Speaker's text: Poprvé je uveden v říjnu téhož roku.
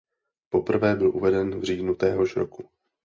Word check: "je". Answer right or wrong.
wrong